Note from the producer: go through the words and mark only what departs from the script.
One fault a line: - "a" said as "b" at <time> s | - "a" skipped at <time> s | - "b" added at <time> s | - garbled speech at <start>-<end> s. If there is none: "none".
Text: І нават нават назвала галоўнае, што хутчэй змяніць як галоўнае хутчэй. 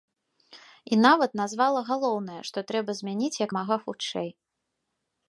- "нават" skipped at 1.3 s
- "хутчэй" said as "трэба" at 2.7 s
- "галоўнае" said as "мага" at 3.6 s